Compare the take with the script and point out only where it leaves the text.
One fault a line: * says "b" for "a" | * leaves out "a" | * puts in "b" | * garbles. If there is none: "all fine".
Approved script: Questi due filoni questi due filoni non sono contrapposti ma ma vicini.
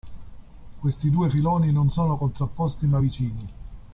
* leaves out "questi due filoni"
* leaves out "ma"